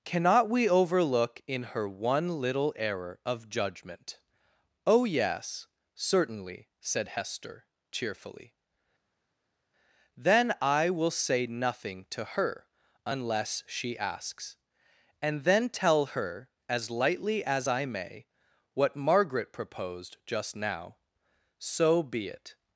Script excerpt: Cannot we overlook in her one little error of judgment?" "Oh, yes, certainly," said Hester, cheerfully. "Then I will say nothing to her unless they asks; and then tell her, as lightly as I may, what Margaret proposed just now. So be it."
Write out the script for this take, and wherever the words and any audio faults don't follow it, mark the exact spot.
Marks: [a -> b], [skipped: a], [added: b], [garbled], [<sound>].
Cannot we overlook in her one little error of judgment?" "Oh, yes, certainly," said Hester, cheerfully. "Then I will say nothing to her unless [they -> she] asks; and then tell her, as lightly as I may, what Margaret proposed just now. So be it."